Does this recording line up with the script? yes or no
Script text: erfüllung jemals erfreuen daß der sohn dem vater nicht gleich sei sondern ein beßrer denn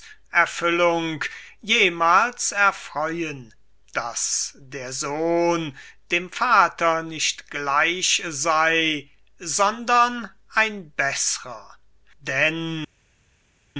yes